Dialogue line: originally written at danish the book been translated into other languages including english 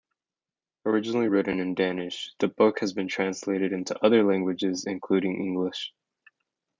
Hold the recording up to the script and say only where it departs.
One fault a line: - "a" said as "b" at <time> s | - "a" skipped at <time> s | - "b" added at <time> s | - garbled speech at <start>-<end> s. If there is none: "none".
- "at" said as "in" at 1.6 s
- "has" added at 2.8 s